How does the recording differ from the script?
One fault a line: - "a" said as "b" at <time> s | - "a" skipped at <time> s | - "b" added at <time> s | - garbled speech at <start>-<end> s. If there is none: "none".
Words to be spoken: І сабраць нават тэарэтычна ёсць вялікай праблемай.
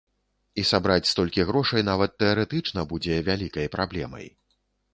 - "столькі грошай" added at 1.1 s
- "ёсць" said as "будзе" at 3.0 s